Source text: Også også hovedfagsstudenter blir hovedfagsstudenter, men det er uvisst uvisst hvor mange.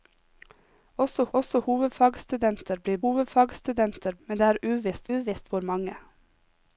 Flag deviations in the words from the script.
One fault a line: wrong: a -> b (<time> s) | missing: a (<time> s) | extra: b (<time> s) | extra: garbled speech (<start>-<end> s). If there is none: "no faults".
no faults